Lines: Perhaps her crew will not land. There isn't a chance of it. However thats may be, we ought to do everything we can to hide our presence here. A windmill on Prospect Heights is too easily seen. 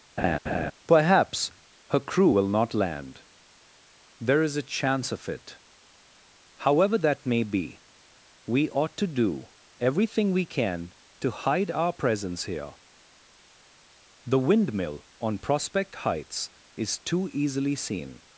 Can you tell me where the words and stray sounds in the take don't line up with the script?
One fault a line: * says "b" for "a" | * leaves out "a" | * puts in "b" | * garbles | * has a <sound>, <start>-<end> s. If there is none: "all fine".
* has a laugh, 0.2-0.7 s
* says "is" for "isn't"
* says "that" for "thats"
* says "The" for "A"